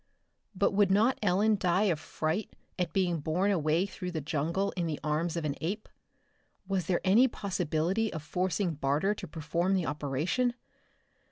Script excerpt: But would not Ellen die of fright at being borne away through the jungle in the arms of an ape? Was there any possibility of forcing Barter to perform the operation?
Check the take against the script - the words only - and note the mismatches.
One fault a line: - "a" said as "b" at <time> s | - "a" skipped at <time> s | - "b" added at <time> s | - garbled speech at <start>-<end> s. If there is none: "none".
none